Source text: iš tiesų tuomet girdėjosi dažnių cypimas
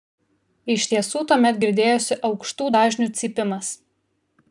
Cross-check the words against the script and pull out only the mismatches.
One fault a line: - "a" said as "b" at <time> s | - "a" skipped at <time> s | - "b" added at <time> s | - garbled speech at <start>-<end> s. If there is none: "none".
- "aukštų" added at 2.3 s